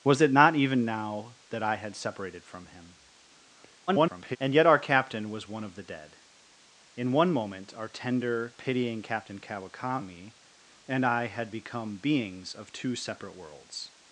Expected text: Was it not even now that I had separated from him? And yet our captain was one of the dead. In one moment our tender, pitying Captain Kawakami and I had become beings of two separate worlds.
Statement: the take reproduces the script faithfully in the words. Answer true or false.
false